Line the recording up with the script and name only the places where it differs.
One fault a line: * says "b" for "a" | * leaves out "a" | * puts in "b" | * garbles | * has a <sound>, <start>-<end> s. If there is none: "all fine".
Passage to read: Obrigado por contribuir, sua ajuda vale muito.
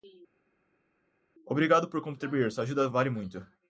all fine